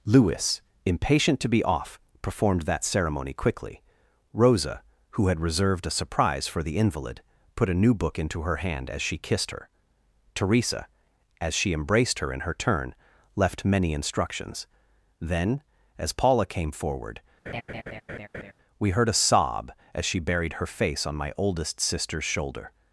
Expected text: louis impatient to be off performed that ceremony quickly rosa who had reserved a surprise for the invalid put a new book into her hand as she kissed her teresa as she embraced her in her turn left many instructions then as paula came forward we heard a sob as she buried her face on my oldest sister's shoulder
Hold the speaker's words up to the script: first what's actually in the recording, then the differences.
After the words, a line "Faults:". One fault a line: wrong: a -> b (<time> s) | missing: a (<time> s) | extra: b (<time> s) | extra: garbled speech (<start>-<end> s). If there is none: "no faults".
louis impatient to be off performed that ceremony quickly rosa who had reserved a surprise for the invalid put a new book into her hand as she kissed her teresa as she embraced her in her turn left many instructions then as paula came forward we heard a sob as she buried her face on my oldest sister's shoulder
Faults:
no faults